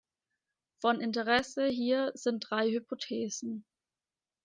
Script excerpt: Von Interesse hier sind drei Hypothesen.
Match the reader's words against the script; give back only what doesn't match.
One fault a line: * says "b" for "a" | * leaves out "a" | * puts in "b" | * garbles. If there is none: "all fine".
all fine